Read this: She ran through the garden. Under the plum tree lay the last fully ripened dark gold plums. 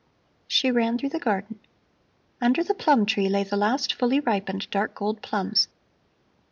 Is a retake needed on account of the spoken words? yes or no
no